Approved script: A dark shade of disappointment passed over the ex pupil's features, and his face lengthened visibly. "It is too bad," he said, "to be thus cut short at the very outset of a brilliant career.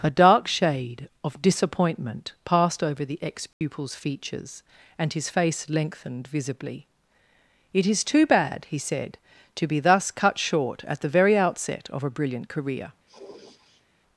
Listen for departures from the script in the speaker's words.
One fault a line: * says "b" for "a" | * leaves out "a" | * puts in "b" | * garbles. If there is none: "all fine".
all fine